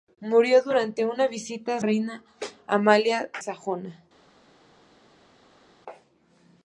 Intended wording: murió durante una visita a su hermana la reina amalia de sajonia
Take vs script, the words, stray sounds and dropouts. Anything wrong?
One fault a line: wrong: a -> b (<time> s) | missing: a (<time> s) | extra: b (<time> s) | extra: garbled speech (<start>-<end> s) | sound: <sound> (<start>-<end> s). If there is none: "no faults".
missing: su hermana la (1.8 s)
missing: de (3.3 s)